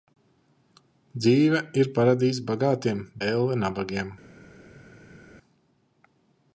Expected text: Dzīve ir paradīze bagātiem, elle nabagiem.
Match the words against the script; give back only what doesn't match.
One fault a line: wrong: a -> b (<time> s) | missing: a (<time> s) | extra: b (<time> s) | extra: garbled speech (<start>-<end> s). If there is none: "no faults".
no faults